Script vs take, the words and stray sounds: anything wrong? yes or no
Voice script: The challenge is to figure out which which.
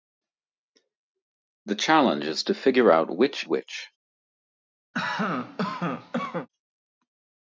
yes